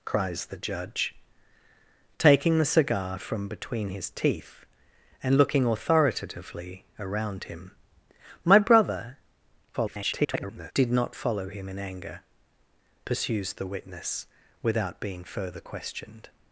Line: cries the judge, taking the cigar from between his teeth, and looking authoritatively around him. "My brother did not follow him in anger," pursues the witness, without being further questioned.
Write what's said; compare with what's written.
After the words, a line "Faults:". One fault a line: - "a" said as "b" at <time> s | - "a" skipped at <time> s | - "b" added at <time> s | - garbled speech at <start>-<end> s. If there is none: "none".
cries the judge, taking the cigar from between his teeth, and looking authoritatively around him. "My brother [garbled] did not follow him in anger," pursues the witness, without being further questioned.
Faults:
- garbled speech at 9.7-10.7 s